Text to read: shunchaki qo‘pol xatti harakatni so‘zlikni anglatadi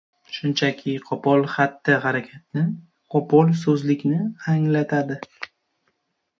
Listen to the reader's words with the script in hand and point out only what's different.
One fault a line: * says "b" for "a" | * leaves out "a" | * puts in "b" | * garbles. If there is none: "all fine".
* puts in "qo‘pol"